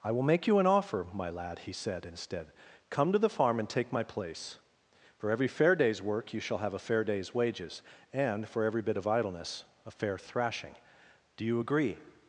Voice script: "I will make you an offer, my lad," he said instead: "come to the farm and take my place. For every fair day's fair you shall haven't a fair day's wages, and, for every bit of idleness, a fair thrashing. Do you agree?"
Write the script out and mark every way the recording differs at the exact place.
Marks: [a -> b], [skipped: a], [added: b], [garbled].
"I will make you an offer, my lad," he said instead: "come to the farm and take my place. For every fair day's [fair -> work] you shall [haven't -> have] a fair day's wages, and, for every bit of idleness, a fair thrashing. Do you agree?"